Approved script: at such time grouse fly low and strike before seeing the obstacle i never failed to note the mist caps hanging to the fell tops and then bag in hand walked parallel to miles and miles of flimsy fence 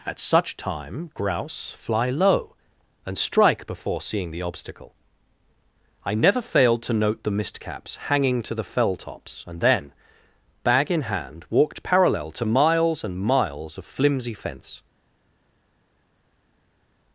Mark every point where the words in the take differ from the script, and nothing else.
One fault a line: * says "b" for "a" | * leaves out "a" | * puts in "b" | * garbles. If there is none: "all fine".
all fine